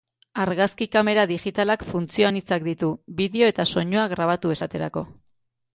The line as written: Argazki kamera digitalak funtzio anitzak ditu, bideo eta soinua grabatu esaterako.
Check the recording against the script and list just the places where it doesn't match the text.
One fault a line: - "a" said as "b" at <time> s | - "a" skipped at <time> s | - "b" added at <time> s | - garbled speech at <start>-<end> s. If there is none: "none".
none